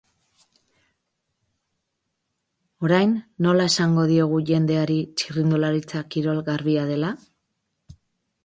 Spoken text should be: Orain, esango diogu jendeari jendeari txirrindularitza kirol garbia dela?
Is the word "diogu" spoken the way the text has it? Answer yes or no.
yes